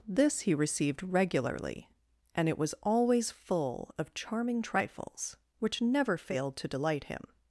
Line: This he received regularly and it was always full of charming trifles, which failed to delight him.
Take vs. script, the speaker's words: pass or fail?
fail